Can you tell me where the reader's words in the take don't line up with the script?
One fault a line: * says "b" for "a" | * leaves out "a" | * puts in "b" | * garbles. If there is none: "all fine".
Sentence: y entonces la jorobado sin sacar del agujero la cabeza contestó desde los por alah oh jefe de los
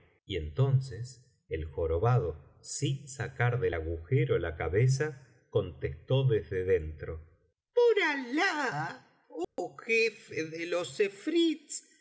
* says "el" for "la"
* says "dentro" for "los"